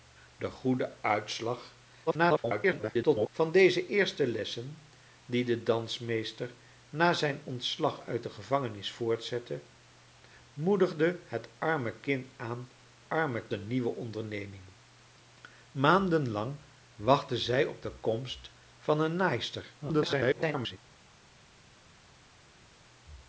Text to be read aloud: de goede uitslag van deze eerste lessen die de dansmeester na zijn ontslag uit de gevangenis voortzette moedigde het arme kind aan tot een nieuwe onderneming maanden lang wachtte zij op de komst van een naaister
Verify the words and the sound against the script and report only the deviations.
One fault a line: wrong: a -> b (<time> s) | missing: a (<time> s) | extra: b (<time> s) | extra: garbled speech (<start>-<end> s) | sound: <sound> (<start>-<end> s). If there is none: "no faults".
extra: garbled speech (2.1-3.3 s)
wrong: tot -> arme (13.1 s)
extra: garbled speech (19.8-20.8 s)